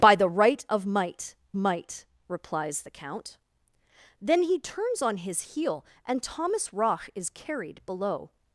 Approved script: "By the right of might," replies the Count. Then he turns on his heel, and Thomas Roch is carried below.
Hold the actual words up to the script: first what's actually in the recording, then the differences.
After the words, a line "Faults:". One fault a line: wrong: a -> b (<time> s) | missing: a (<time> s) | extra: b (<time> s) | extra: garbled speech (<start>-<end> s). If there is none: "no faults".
"By the right of might might," replies the Count. Then he turns on his heel, and Thomas Roch is carried below.
Faults:
extra: might (1.6 s)